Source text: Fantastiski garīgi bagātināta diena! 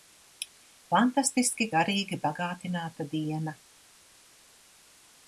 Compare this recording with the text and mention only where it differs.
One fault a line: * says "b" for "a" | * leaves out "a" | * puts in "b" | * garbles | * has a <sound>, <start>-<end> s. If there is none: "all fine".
all fine